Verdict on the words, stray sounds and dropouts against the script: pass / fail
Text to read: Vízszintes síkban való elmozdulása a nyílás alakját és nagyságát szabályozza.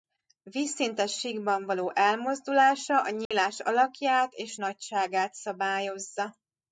fail